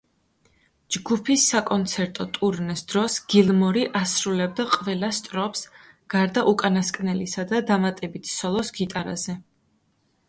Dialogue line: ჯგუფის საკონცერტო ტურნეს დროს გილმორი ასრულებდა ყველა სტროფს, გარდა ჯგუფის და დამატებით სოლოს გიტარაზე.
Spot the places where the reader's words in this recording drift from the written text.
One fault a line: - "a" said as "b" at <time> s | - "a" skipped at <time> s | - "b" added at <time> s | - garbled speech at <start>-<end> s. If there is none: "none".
- "ჯგუფის" said as "უკანასკნელისა" at 6.5 s